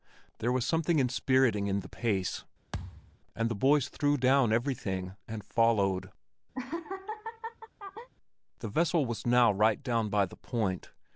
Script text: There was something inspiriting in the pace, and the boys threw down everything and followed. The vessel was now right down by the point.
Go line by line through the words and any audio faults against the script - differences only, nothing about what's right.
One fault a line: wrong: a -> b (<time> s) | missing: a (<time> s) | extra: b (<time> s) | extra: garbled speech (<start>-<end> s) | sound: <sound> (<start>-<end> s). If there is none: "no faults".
sound: thud (2.7-3.2 s)
sound: laugh (6.5-8.1 s)